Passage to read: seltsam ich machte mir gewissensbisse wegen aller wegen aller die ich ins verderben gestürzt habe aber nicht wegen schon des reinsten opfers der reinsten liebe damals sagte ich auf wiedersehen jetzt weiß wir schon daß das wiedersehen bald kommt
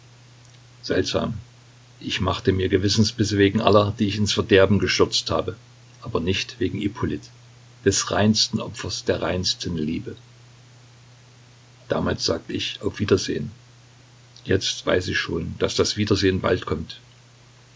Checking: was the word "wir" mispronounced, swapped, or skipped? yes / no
yes